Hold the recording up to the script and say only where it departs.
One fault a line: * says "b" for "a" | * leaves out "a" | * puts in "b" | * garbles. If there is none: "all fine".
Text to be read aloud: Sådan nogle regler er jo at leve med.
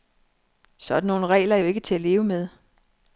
* puts in "ikke til"